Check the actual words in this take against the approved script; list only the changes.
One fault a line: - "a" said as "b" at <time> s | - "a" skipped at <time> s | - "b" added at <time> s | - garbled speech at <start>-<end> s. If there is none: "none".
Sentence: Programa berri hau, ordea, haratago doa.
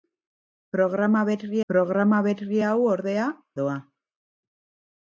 - "programa berri" added at 1.7 s
- "haratago" skipped at 3.3 s